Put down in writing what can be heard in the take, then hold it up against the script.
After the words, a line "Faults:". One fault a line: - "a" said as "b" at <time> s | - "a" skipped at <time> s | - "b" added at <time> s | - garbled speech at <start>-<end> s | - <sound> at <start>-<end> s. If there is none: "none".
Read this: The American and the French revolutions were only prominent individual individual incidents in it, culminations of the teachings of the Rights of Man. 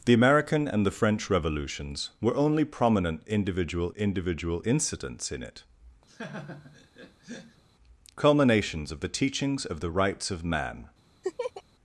The American and the French revolutions were only prominent individual individual incidents in it, culminations of the teachings of the Rights of Man.
Faults:
- laugh at 6.1-7.6 s
- laugh at 11.2-11.6 s